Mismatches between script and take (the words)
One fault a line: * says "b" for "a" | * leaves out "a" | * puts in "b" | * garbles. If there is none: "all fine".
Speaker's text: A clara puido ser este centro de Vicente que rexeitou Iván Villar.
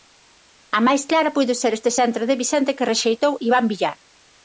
* puts in "máis"